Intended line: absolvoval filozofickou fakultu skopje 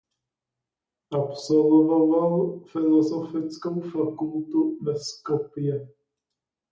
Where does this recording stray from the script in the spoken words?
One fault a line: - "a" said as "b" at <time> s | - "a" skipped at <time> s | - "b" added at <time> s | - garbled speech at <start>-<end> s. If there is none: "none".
- "ve" added at 4.8 s